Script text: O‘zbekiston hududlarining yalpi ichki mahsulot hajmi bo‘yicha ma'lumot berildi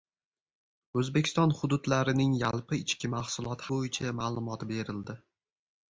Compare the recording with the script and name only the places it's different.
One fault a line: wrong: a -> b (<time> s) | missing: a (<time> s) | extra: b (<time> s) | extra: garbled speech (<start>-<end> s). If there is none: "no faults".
missing: hajmi (3.7 s)